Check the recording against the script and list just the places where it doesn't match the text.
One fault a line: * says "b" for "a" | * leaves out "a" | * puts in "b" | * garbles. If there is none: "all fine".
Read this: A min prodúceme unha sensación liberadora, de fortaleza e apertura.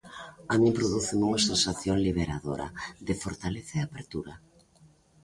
all fine